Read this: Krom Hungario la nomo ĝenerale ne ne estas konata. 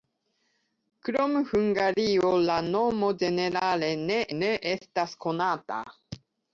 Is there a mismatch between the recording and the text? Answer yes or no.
no